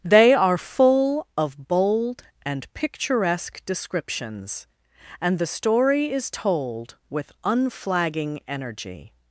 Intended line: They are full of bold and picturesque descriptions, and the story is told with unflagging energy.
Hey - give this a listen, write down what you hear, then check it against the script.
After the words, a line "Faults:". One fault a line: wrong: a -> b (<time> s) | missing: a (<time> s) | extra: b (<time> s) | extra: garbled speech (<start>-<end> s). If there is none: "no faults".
They are full of bold and picturesque descriptions, and the story is told with unflagging energy.
Faults:
no faults